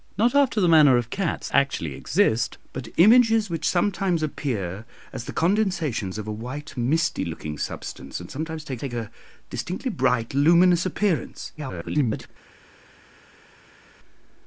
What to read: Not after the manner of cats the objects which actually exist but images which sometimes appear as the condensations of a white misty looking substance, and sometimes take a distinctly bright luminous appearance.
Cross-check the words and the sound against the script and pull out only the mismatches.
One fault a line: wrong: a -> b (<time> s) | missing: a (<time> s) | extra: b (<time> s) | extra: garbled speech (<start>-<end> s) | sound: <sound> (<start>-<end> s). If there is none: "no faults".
missing: the objects which (1.5 s)
extra: take (8.8 s)
extra: garbled speech (11.6-12.3 s)